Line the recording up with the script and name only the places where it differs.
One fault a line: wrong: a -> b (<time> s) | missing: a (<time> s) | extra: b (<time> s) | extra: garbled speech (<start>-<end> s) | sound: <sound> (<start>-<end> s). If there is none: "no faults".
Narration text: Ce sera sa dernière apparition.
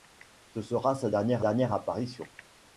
extra: dernière (1.4 s)